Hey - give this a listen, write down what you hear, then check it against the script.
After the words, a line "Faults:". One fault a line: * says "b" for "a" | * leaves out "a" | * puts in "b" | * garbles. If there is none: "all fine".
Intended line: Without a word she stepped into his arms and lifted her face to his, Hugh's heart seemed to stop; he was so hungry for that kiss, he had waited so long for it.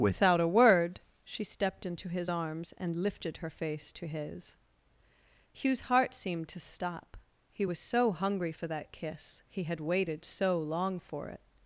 Without a word she stepped into his arms and lifted her face to his, Hugh's heart seemed to stop; he was so hungry for that kiss, he had waited so long for it.
Faults:
all fine